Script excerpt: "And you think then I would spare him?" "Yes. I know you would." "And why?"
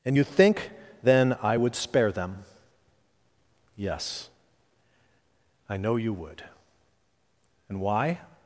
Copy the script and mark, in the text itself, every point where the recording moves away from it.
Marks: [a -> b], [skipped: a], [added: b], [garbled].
"And you think then I would spare [him?" -> them] "Yes. I know you would." "And why?"